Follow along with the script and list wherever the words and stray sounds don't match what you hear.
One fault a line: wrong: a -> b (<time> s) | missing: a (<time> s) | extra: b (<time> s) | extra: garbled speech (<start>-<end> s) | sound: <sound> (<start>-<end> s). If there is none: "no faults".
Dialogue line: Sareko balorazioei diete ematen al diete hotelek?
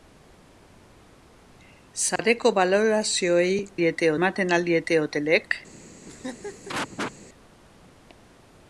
sound: dropout (2.2-2.2 s)
sound: laugh (6.1-7.1 s)